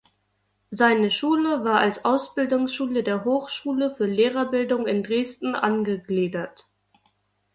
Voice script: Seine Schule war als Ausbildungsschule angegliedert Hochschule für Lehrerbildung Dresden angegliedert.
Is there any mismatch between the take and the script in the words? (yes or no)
yes